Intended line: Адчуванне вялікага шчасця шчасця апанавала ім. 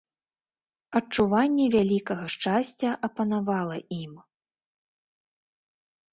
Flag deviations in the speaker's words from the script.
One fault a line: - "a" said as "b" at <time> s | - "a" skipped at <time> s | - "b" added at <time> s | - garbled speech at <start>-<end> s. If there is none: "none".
- "шчасця" skipped at 2.9 s